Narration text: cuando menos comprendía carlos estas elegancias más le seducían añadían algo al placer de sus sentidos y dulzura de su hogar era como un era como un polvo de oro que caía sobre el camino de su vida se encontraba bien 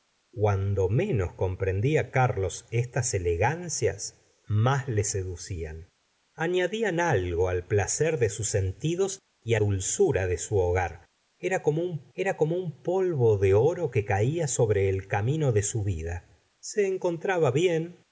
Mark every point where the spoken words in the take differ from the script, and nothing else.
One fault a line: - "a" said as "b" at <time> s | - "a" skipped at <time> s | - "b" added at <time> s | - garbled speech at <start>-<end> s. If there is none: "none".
none